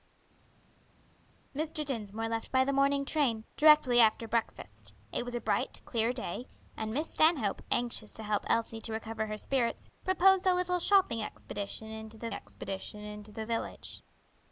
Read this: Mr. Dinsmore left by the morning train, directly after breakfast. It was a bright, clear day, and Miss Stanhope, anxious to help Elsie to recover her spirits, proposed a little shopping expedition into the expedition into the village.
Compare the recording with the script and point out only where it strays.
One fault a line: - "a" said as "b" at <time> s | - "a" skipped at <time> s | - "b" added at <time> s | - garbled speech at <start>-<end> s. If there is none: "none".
none